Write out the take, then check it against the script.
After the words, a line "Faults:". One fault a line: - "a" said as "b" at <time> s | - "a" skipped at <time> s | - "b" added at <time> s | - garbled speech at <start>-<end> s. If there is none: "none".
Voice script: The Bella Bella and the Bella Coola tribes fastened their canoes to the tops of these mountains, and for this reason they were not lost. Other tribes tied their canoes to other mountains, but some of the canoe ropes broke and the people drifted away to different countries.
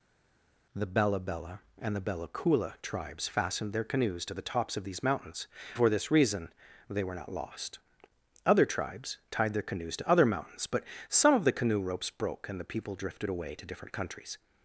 The Bella Bella and the Bella Coola tribes fastened their canoes to the tops of these mountains, for this reason they were not lost. Other tribes tied their canoes to other mountains, but some of the canoe ropes broke and the people drifted away to different countries.
Faults:
- "and" skipped at 5.5 s